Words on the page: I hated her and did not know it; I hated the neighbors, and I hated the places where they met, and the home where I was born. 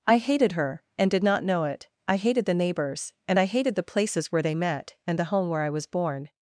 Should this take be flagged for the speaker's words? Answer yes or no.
no